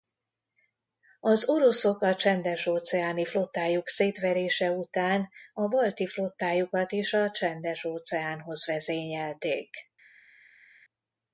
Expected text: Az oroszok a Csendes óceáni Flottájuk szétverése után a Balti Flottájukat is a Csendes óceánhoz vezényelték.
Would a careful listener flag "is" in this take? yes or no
no